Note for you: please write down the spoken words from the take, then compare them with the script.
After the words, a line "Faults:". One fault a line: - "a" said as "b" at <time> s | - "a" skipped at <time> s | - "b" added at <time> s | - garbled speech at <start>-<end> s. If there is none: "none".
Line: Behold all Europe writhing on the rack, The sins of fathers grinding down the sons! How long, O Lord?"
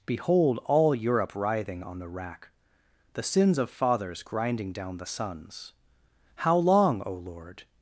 Behold all Europe writhing on the rack, The sins of fathers grinding down the sons! How long, O Lord?"
Faults:
none